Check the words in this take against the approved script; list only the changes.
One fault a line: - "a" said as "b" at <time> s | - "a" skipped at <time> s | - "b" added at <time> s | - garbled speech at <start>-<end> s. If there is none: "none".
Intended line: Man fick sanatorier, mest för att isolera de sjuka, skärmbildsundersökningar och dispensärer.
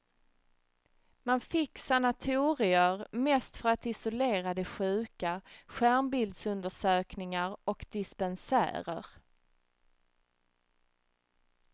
none